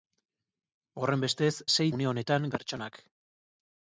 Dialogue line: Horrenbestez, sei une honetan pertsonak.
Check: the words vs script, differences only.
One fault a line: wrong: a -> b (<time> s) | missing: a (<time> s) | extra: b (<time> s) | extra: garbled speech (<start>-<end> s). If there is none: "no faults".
no faults